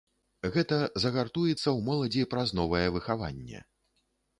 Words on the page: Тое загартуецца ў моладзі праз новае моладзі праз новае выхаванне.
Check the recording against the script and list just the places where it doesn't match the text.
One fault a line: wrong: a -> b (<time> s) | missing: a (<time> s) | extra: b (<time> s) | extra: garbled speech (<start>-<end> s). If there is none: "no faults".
wrong: Тое -> Гэта (0.6 s)
missing: моладзі праз новае (2.9 s)